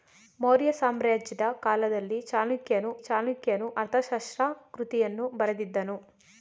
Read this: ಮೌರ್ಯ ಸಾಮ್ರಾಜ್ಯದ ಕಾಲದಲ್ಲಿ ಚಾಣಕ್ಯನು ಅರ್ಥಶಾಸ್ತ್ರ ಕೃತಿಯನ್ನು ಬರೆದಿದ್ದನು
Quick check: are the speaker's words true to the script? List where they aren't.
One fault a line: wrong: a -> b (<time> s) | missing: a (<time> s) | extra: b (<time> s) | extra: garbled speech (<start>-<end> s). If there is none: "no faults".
extra: ಚಾಣಕ್ಯನು (3.0 s)